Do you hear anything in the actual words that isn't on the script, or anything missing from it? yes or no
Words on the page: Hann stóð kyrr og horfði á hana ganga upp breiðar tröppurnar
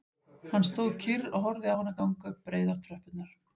no